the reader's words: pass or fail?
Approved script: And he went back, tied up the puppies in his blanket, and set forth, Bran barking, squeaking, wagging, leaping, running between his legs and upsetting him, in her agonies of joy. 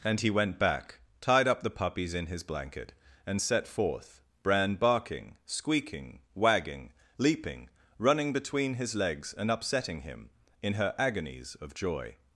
pass